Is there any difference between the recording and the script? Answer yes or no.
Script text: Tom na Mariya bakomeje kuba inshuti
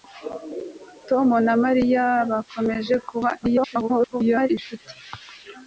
yes